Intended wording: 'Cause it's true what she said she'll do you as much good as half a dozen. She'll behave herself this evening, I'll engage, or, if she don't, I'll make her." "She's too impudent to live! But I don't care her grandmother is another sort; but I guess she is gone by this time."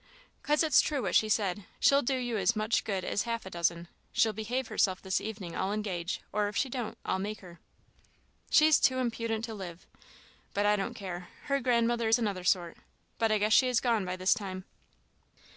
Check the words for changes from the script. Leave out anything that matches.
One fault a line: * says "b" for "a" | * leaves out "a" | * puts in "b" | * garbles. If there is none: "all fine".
all fine